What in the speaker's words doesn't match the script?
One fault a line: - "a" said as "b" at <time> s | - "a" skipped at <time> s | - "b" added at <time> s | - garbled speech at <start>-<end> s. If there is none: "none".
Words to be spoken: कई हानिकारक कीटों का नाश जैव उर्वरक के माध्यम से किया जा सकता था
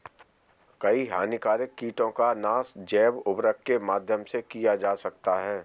- "था" said as "है" at 5.4 s